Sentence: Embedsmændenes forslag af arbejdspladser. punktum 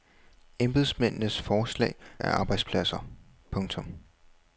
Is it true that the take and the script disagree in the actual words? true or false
false